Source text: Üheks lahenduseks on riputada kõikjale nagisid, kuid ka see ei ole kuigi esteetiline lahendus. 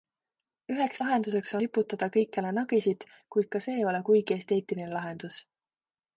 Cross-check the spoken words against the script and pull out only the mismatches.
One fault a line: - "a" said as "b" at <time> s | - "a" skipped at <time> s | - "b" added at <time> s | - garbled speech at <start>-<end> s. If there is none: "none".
- "on" skipped at 1.5 s